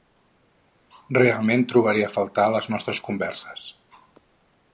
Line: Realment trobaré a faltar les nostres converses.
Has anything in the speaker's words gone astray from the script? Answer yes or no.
no